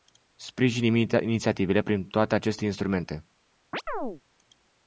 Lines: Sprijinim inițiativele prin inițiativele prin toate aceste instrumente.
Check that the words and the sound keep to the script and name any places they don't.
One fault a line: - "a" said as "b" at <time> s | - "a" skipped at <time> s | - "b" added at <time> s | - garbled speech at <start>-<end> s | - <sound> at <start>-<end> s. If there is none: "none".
- "inițiativele prin" skipped at 2.1 s
- chirp at 3.7-4.2 s